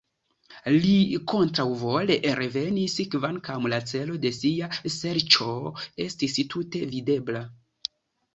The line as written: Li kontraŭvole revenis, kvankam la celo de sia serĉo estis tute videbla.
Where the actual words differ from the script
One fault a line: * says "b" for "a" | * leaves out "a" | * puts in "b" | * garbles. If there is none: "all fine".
all fine